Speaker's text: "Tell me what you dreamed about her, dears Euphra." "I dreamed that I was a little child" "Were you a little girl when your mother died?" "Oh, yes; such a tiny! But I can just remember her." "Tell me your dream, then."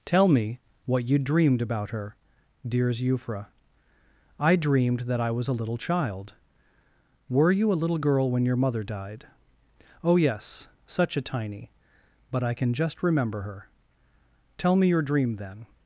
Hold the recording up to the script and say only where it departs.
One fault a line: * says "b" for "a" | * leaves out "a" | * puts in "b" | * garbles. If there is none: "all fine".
all fine